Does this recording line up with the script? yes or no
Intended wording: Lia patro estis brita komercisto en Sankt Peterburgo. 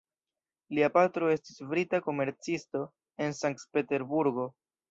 yes